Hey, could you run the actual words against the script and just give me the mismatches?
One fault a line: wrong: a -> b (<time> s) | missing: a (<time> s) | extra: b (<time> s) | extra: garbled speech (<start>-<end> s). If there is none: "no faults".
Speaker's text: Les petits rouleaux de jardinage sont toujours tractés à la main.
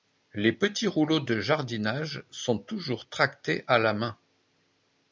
no faults